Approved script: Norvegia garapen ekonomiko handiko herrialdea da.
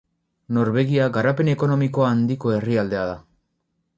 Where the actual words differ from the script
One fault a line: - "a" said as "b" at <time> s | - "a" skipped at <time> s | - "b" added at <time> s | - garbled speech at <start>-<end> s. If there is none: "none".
none